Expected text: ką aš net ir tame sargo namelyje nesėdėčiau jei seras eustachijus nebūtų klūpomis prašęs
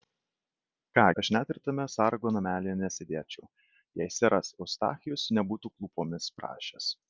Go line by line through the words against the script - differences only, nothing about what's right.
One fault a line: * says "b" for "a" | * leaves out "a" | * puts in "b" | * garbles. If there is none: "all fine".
all fine